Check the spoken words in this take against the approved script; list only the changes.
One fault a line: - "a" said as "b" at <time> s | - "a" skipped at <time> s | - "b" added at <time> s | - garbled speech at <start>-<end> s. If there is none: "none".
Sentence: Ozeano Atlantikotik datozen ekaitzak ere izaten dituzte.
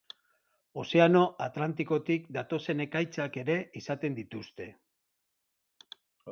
none